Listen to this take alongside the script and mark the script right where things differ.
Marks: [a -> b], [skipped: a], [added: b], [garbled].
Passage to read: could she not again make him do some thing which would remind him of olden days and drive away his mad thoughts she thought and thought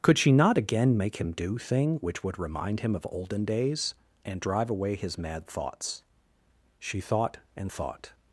could she not again make him do [skipped: some] thing which would remind him of olden days and drive away his mad thoughts she thought and thought